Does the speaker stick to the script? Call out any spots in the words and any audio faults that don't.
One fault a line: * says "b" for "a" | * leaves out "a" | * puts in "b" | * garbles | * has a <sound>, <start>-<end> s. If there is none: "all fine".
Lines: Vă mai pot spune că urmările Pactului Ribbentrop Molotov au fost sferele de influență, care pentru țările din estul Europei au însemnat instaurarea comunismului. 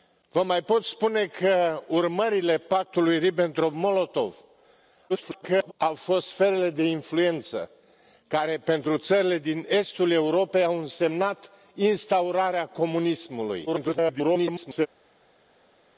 * garbles
* garbles